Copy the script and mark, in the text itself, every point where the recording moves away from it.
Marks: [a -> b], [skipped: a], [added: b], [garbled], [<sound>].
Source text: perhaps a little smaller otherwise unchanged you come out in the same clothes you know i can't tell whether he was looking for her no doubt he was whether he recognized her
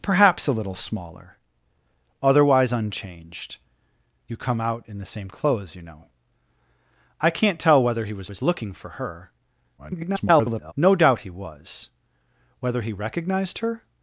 perhaps a little smaller otherwise unchanged you come out in the same clothes you know i can't tell whether he was [added: was] looking for her [garbled] no doubt he was whether he recognized her